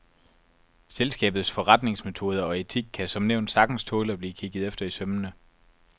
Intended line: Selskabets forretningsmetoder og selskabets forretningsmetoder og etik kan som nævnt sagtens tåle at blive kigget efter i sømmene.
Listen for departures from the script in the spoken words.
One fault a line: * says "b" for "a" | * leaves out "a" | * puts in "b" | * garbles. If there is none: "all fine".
* leaves out "selskabets forretningsmetoder og"